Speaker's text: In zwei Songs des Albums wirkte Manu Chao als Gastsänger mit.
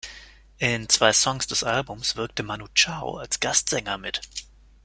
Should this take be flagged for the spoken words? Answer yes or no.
no